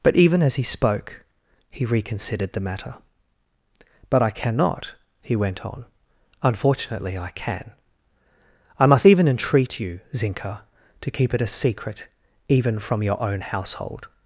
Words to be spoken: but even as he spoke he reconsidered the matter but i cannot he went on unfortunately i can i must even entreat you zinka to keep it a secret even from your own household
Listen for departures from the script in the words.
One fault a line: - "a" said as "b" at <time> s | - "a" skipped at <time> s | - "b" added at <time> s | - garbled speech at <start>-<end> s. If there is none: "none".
none